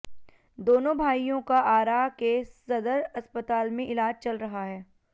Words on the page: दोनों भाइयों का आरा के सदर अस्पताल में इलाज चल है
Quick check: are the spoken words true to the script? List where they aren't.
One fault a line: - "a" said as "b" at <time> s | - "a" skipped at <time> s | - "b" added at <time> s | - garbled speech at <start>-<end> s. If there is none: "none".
- "रहा" added at 4.4 s